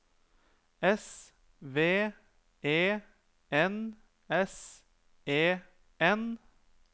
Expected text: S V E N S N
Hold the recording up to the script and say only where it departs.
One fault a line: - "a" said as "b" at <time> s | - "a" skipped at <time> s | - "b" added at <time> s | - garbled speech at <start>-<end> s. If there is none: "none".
- "E" added at 5.3 s